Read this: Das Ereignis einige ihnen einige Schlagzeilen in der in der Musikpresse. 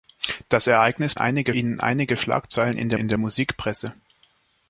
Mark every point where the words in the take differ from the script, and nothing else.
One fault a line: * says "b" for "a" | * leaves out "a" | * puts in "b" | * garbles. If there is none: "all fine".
all fine